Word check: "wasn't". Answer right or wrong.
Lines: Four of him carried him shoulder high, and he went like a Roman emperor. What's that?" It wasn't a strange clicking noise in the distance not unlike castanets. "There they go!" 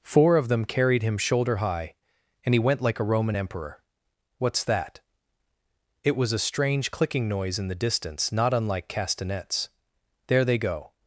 wrong